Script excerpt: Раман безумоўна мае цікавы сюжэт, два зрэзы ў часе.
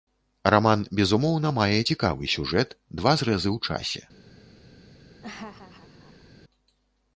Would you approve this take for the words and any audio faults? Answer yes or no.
no